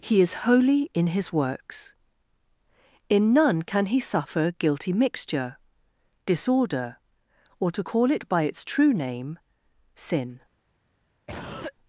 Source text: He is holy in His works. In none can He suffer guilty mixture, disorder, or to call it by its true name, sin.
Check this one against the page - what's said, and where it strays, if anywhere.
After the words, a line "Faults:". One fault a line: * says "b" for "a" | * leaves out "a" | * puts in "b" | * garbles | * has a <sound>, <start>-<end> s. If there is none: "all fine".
He is holy in His works. In none can He suffer guilty mixture, disorder, or to call it by its true name, sin.
Faults:
* has a cough, 11.3-11.7 s